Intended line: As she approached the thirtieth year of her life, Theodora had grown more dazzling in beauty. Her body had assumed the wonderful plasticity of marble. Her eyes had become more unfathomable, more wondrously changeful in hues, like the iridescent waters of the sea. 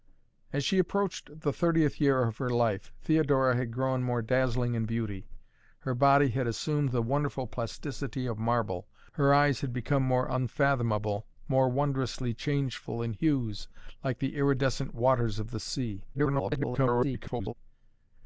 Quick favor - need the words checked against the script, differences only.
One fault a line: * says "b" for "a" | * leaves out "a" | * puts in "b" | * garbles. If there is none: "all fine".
* garbles